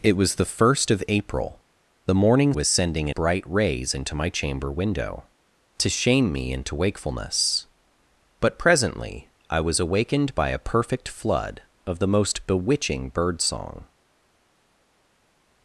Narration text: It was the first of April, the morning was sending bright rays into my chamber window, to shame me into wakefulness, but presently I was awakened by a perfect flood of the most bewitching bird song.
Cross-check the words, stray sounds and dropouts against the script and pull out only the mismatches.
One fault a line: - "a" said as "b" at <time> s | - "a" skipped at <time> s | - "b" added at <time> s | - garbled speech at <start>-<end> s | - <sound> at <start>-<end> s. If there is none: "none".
none